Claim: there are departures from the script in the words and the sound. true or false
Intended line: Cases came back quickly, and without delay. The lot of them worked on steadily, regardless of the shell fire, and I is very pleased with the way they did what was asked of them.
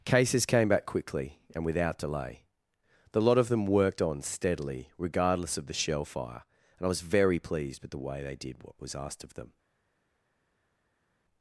true